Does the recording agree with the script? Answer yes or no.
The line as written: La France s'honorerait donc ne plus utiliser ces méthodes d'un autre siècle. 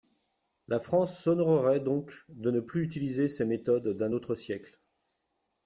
no